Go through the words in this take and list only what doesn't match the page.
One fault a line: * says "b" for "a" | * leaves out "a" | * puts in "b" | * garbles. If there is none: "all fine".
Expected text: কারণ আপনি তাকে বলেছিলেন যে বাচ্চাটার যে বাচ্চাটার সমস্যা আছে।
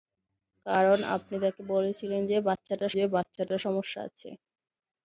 all fine